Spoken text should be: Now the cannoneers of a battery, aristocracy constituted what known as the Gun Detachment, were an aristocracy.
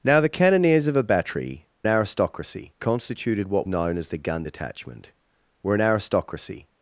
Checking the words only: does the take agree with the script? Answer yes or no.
yes